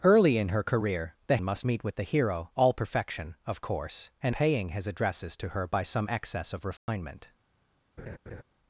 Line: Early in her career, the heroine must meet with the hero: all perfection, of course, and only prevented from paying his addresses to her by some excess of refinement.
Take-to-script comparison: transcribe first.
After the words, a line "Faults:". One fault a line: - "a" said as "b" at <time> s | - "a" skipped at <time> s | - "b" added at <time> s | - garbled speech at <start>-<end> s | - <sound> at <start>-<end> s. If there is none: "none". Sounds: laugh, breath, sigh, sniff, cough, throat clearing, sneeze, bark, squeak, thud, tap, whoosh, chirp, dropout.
Early in her career, the must meet with the hero: all perfection, of course, and paying his addresses to her by some excess of refinement.
Faults:
- "heroine" skipped at 1.4 s
- "only prevented from" skipped at 4.3 s
- dropout at 6.8-6.9 s
- laugh at 8.0-8.4 s